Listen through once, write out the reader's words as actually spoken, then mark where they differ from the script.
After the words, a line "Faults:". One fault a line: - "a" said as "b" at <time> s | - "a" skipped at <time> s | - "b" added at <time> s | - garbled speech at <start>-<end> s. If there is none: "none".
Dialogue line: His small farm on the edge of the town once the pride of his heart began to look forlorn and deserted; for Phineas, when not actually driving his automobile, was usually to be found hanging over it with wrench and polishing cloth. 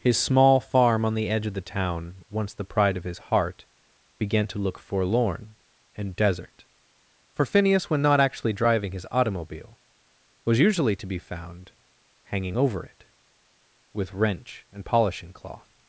His small farm on the edge of the town once the pride of his heart began to look forlorn and desert; for Phineas, when not actually driving his automobile, was usually to be found hanging over it with wrench and polishing cloth.
Faults:
- "deserted" said as "desert" at 6.2 s